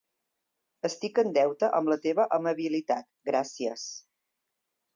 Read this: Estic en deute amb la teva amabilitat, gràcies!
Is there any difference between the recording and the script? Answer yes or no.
no